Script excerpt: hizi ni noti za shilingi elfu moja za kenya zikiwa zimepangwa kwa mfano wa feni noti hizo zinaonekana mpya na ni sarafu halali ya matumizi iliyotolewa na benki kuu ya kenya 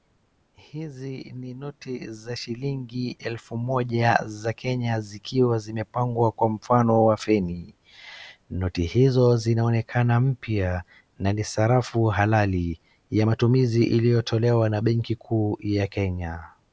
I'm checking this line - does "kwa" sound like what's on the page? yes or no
yes